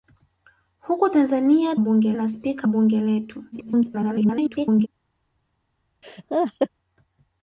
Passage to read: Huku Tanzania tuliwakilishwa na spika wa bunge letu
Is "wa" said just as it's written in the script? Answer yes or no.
no